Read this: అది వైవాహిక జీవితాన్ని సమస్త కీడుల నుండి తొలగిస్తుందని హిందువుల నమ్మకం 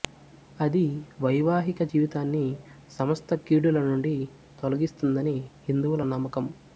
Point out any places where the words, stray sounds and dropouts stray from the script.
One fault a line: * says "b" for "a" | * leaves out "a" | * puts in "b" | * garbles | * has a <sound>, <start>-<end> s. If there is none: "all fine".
all fine